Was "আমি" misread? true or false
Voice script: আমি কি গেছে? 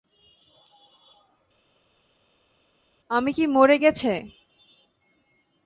false